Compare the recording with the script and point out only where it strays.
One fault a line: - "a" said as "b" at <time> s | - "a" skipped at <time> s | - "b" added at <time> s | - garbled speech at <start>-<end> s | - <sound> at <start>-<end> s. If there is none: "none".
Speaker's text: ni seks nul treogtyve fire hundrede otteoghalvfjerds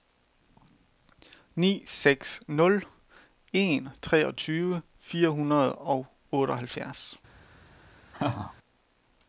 - "en" added at 3.5 s
- "og" added at 5.7 s
- laugh at 8.1-8.5 s